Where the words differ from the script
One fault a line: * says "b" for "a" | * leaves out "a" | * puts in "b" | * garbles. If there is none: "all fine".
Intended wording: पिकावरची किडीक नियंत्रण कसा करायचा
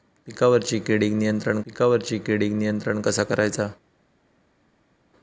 * puts in "पिकावरची किडीक नियंत्रण"